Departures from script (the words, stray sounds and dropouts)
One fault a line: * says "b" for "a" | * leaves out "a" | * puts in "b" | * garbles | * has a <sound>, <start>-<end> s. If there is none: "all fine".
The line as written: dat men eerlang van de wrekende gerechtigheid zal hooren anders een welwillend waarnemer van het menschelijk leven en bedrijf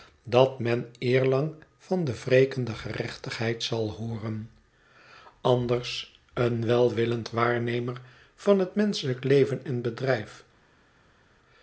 all fine